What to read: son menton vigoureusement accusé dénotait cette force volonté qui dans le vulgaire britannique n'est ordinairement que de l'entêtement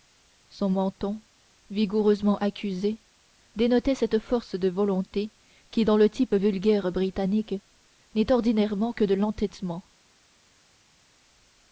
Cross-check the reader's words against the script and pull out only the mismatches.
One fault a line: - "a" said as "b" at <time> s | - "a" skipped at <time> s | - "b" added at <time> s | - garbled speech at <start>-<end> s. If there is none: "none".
- "de" added at 4.5 s
- "type" added at 6.1 s